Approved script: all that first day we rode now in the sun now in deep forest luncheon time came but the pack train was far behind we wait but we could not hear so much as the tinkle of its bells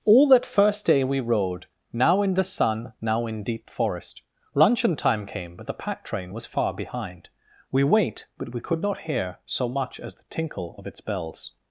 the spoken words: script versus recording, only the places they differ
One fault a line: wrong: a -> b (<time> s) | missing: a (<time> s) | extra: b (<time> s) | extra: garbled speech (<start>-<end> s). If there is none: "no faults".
no faults